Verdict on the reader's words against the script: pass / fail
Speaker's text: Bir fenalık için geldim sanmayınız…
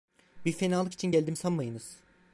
pass